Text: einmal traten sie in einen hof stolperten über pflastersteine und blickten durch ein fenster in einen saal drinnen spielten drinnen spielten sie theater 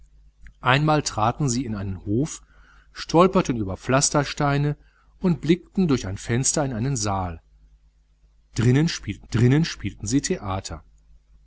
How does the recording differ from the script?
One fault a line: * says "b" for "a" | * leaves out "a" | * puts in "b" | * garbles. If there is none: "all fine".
all fine